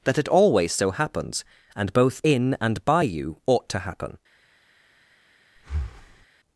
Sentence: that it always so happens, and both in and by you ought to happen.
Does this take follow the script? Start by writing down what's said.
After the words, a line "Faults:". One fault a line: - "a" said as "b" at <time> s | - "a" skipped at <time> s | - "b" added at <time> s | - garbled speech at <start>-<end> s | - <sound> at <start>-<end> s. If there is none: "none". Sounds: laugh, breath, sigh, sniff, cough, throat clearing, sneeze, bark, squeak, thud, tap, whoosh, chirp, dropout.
that it always so happens, and both in and by you ought to happen.
Faults:
- breath at 5.6-6.3 s